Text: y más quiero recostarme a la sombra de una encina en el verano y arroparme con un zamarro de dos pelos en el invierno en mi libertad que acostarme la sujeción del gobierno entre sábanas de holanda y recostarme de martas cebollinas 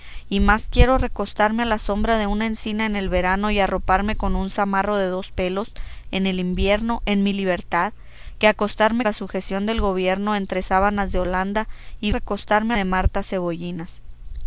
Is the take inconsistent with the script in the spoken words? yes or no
no